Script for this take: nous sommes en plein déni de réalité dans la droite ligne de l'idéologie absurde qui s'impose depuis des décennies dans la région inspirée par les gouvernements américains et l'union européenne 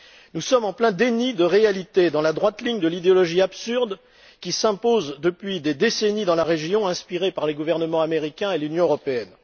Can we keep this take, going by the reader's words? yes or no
yes